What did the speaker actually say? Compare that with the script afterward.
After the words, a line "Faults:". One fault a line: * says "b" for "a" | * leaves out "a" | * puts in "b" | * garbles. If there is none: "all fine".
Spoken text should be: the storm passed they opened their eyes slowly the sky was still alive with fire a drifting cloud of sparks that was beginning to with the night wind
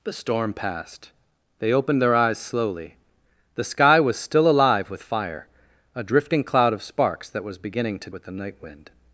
the storm passed they opened their eyes slowly the sky was still alive with fire a drifting cloud of sparks that was beginning to with the night wind
Faults:
all fine